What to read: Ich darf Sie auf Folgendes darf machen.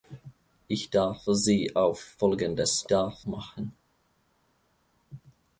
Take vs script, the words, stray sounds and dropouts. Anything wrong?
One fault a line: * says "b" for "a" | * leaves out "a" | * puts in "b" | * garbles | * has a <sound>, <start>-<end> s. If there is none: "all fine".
all fine